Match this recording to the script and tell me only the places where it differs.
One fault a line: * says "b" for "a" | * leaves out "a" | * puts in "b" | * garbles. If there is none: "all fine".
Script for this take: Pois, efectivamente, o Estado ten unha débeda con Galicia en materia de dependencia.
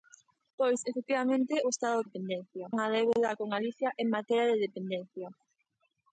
* says "dependencia" for "ten"